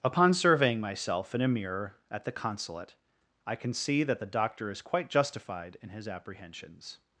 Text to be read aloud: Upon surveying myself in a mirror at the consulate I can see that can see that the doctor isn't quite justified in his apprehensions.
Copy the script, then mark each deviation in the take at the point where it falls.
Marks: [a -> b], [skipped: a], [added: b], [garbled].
Upon surveying myself in a mirror at the consulate I can see that [skipped: can see that] the doctor [isn't -> is] quite justified in his apprehensions.